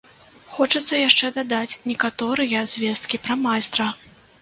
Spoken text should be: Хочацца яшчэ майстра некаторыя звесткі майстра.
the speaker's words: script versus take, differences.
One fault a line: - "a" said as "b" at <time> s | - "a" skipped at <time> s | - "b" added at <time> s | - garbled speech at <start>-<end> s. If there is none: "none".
- "майстра" said as "дадаць" at 1.4 s
- "пра" added at 3.3 s